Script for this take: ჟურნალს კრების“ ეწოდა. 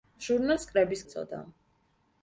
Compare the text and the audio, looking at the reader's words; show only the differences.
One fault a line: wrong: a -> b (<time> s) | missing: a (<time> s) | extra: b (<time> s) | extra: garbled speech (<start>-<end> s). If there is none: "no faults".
no faults